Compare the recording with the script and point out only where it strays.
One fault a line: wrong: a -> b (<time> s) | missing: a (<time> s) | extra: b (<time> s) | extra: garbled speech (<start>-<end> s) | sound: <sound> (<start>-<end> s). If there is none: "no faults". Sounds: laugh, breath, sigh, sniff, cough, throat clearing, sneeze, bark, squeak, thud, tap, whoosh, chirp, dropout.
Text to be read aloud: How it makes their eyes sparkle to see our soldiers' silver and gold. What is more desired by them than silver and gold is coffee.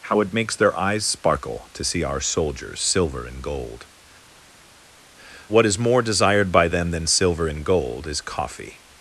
no faults